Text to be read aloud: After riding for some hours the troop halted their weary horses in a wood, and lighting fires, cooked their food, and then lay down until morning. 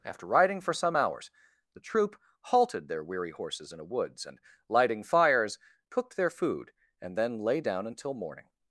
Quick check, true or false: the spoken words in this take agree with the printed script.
false